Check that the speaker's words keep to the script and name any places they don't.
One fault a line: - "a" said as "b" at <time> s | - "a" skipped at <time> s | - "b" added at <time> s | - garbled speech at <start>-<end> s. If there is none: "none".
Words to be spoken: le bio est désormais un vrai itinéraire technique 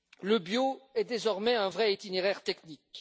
none